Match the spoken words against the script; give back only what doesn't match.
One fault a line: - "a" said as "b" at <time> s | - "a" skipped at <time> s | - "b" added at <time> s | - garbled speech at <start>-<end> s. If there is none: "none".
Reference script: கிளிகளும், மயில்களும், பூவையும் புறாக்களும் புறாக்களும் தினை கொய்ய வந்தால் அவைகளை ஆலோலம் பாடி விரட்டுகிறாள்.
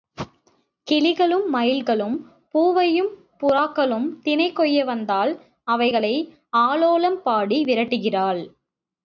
- "புறாக்களும்" skipped at 4.1 s